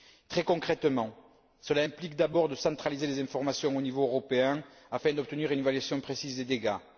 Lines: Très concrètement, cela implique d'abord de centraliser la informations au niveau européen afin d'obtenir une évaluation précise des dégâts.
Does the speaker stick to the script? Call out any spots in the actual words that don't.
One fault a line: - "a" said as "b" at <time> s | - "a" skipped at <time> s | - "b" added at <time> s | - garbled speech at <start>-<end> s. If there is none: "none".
- "la" said as "les" at 3.1 s